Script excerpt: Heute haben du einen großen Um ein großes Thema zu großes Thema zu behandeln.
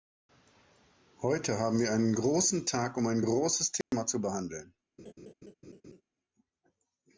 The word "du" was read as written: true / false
false